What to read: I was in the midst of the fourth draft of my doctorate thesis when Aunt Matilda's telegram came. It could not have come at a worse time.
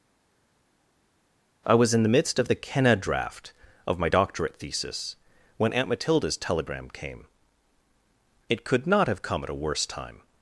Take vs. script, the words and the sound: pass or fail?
fail